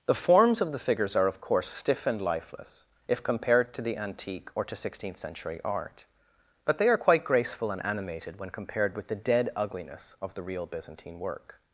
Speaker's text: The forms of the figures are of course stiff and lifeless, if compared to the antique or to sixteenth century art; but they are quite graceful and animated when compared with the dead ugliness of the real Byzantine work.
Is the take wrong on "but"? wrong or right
right